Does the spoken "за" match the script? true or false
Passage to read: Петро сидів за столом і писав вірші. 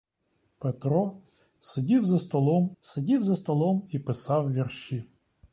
true